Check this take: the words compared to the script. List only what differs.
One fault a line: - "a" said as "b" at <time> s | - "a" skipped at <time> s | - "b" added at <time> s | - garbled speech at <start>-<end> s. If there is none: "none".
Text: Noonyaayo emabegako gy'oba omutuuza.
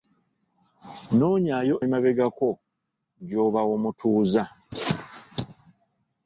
none